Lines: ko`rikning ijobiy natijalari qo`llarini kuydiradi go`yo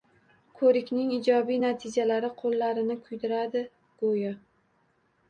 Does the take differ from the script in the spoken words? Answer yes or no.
no